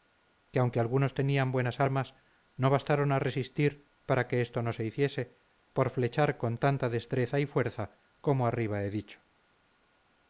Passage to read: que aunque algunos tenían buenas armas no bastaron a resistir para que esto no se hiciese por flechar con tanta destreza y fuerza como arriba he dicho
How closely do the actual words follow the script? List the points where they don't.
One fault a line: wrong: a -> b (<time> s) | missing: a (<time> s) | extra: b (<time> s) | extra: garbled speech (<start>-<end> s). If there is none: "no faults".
no faults